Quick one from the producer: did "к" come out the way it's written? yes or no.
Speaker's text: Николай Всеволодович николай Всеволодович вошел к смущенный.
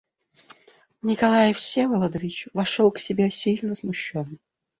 no